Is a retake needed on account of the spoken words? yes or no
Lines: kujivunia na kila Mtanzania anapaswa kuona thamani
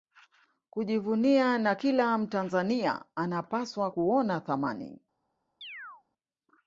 no